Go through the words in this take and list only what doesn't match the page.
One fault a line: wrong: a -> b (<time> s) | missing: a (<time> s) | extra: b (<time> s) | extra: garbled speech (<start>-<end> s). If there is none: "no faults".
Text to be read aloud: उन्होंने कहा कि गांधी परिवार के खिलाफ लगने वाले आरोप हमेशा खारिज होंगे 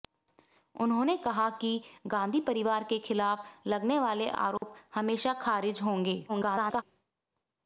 extra: garbled speech (6.3-6.8 s)